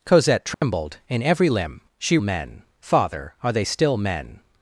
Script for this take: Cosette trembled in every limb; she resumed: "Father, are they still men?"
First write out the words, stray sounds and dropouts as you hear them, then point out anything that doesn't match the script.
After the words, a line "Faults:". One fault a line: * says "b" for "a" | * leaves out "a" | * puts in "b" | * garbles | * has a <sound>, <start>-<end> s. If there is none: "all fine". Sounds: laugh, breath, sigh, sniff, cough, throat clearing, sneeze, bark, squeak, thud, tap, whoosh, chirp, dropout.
Cosette trembled in every limb; she men: "Father, are they still men?"
Faults:
* has a dropout, 0.5-0.6 s
* says "men" for "resumed"